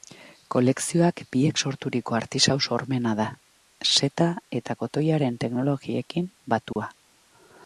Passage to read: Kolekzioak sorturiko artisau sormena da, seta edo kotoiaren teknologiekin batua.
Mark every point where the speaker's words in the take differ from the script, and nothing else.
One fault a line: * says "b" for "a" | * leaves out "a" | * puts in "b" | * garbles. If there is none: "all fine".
* puts in "biek"
* says "eta" for "edo"